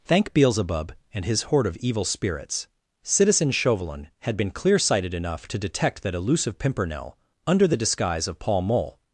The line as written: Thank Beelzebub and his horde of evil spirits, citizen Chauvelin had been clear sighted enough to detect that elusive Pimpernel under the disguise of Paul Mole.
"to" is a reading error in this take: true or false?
false